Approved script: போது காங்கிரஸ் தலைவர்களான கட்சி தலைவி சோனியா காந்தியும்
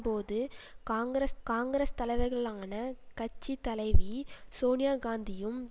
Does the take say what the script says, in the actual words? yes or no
no